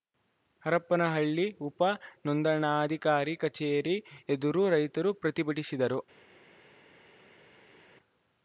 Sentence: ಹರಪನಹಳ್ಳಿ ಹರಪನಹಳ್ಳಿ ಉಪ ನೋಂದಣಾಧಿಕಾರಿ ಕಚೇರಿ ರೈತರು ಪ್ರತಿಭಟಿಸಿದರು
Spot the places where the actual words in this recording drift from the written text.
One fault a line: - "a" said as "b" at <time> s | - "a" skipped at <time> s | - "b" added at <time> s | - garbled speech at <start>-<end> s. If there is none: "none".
- "ಹರಪನಹಳ್ಳಿ" skipped at 1.4 s
- "ಎದುರು" added at 4.3 s